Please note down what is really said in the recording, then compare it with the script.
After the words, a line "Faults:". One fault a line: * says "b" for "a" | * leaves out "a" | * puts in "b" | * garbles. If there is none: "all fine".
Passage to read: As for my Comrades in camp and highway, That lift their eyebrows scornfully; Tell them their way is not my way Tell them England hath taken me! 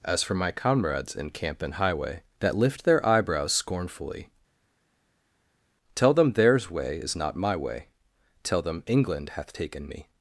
As for my Comrades in camp and highway, That lift their eyebrows scornfully; Tell them theirs way is not my way Tell them England hath taken me!
Faults:
* says "theirs" for "their"